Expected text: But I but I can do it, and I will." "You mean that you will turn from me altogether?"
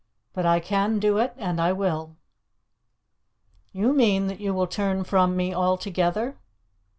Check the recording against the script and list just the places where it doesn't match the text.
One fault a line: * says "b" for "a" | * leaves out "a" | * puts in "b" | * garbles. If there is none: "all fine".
* leaves out "but I"